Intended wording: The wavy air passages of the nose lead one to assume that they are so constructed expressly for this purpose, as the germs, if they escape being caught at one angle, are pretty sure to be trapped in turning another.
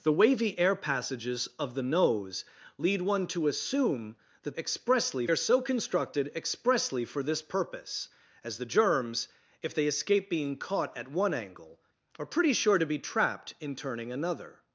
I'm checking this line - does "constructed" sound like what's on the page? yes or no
yes